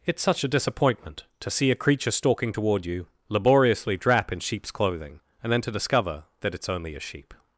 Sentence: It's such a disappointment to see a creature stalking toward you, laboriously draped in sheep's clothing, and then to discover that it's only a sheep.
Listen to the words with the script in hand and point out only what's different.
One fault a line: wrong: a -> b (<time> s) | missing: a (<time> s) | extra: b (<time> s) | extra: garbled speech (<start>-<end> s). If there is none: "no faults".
wrong: draped -> drap (4.0 s)